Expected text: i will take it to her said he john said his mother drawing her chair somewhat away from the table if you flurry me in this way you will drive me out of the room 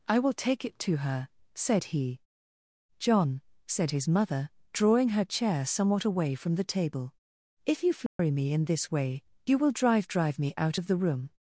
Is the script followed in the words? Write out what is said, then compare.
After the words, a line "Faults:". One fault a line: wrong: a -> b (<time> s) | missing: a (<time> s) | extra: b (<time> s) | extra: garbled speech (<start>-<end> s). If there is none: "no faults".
i will take it to her said he john said his mother drawing her chair somewhat away from the table if you flurry me in this way you will drive drive me out of the room
Faults:
extra: drive (10.1 s)